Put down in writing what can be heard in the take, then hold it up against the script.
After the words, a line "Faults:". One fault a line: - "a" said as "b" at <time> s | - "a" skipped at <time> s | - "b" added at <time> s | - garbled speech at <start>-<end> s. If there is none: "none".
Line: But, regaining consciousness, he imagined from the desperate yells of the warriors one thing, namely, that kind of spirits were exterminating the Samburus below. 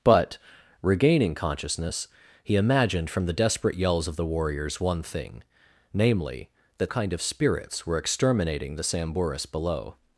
But, regaining consciousness, he imagined from the desperate yells of the warriors one thing, namely, that kind of spirits were exterminating the Samburus below.
Faults:
none